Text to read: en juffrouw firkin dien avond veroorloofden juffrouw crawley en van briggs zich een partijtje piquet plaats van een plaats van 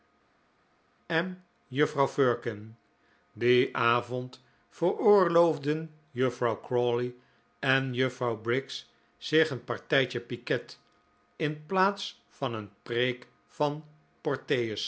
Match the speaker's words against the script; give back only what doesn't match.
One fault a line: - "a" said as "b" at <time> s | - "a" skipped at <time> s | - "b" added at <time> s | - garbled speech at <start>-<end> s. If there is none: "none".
- "van" said as "juffrouw" at 7.9 s
- "in" added at 11.3 s
- "plaats" said as "preek" at 12.8 s